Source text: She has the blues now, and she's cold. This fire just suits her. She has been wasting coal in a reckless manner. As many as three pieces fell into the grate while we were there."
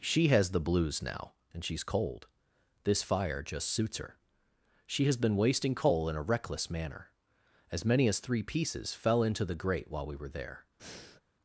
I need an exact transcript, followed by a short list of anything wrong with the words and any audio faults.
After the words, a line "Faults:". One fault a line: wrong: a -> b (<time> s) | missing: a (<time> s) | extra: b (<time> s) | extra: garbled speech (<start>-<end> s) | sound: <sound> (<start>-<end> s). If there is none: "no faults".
She has the blues now, and she's cold. This fire just suits her. She has been wasting coal in a reckless manner. As many as three pieces fell into the grate while we were there."
Faults:
sound: breath (10.8-11.2 s)